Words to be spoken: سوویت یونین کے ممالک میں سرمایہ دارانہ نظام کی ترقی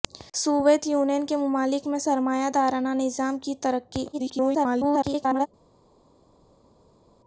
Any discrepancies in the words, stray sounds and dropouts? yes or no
yes